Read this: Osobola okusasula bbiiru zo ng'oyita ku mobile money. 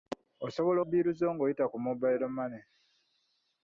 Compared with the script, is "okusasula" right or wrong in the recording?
wrong